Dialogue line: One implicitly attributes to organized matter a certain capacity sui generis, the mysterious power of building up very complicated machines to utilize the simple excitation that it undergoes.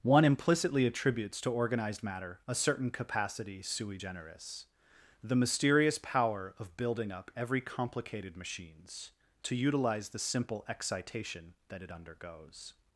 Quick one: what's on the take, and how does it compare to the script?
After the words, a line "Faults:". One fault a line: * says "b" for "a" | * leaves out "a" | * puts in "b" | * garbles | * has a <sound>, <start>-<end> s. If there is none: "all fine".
One implicitly attributes to organized matter a certain capacity sui generis, the mysterious power of building up every complicated machines to utilize the simple excitation that it undergoes.
Faults:
* says "every" for "very"